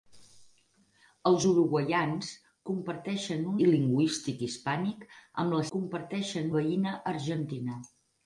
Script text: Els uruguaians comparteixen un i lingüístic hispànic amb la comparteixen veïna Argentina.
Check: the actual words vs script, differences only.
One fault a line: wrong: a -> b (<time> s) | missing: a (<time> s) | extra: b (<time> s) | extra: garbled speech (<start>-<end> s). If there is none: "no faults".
no faults